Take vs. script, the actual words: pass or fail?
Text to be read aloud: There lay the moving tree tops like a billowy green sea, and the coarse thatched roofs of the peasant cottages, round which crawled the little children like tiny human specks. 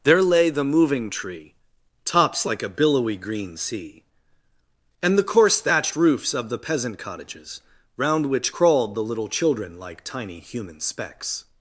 pass